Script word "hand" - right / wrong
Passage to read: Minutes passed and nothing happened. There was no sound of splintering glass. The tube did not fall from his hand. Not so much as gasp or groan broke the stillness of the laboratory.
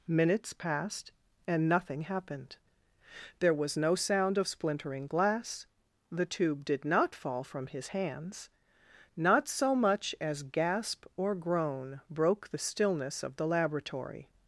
wrong